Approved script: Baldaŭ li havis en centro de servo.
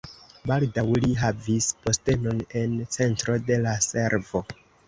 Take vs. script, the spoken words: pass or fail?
fail